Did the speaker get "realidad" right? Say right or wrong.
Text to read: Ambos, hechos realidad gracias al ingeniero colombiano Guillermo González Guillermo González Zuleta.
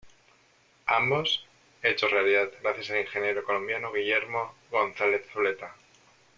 right